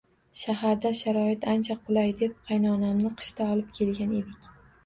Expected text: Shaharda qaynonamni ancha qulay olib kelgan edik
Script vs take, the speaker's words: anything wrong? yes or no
yes